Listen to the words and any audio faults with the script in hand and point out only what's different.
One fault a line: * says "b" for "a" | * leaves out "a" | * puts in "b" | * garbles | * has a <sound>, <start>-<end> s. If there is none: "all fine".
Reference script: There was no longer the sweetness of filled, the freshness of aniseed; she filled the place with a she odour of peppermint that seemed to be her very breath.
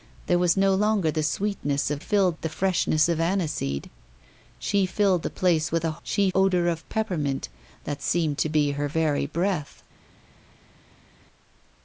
all fine